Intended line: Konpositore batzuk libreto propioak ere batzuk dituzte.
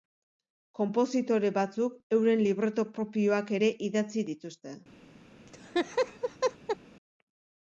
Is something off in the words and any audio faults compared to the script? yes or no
yes